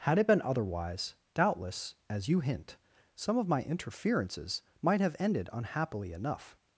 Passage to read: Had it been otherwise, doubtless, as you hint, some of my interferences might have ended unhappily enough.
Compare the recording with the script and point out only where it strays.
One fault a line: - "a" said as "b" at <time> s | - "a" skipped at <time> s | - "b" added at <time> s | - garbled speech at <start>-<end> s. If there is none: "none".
none